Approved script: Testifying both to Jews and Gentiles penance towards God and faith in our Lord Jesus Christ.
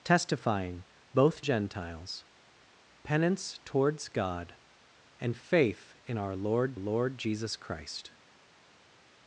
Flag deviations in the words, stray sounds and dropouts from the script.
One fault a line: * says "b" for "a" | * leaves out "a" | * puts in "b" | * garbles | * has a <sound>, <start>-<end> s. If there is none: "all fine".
* leaves out "to Jews and"
* puts in "Lord"